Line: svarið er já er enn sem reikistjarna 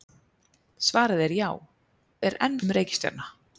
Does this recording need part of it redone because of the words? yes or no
no